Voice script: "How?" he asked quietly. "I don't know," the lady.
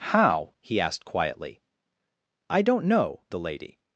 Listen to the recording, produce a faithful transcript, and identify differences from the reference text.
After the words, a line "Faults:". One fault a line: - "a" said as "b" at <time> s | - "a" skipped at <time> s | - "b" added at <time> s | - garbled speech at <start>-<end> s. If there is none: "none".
"How?" he asked quietly. "I don't know," the lady.
Faults:
none